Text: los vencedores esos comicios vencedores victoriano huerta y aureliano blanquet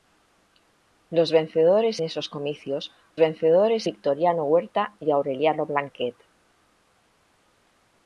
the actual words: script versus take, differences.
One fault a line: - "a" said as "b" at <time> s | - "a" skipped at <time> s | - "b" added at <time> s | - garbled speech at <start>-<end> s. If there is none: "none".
none